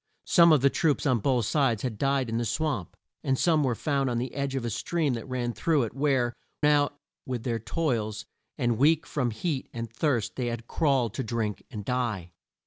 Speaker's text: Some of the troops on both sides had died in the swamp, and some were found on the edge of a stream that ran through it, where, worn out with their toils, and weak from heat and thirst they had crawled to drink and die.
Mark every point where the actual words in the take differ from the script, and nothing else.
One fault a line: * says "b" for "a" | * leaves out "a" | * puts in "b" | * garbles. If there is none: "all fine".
* leaves out "worn"